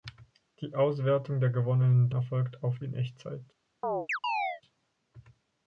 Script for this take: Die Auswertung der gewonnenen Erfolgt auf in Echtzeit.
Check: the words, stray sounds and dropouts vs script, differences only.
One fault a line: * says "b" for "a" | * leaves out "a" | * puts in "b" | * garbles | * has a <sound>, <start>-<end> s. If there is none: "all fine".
* has a chirp, 3.8-4.6 s